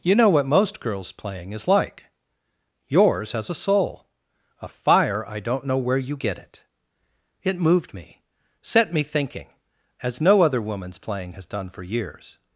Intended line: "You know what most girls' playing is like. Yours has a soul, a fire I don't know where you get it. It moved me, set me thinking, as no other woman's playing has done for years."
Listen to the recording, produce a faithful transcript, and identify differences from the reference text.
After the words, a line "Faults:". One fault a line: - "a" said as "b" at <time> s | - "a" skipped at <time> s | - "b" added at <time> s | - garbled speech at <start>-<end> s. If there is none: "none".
"You know what most girls' playing is like. Yours has a soul, a fire I don't know where you get it. It moved me, set me thinking, as no other woman's playing has done for years."
Faults:
none